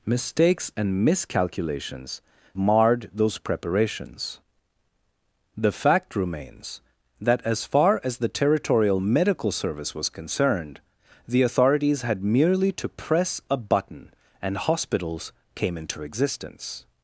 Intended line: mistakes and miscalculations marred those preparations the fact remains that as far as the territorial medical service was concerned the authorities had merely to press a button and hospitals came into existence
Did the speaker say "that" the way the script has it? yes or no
yes